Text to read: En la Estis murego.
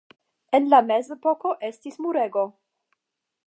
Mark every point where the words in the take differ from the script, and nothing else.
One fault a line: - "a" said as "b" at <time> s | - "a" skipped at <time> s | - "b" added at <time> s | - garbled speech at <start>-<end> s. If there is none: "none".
- "Mezepoko" added at 0.9 s